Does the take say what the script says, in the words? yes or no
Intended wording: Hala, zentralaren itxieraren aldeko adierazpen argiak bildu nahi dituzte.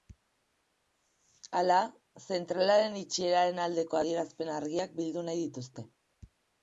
yes